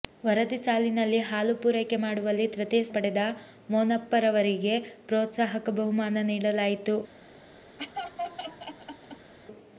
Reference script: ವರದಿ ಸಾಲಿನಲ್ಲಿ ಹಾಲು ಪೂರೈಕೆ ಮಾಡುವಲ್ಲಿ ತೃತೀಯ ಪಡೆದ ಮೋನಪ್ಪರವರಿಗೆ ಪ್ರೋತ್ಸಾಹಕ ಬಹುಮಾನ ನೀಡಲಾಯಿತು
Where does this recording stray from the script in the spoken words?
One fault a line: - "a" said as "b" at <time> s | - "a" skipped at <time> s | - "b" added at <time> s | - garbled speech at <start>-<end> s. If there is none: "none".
none